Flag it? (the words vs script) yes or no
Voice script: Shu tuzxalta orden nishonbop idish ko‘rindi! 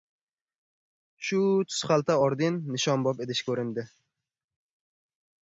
no